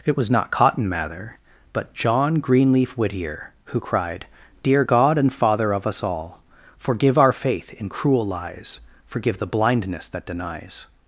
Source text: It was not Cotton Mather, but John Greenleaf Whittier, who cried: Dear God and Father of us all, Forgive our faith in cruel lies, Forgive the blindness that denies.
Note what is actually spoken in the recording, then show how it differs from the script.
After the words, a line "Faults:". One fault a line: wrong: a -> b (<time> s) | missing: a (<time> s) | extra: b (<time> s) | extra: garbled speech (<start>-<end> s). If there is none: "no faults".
It was not Cotton Mather, but John Greenleaf Whittier, who cried: Dear God and Father of us all, Forgive our faith in cruel lies, Forgive the blindness that denies.
Faults:
no faults